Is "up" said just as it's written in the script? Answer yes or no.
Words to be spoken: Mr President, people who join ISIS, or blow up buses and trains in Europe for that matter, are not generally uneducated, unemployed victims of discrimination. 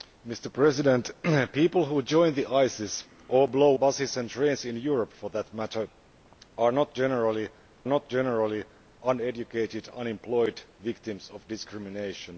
no